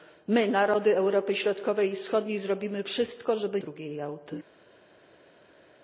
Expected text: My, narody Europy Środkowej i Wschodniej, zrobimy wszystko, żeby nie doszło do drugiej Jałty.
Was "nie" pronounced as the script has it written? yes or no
no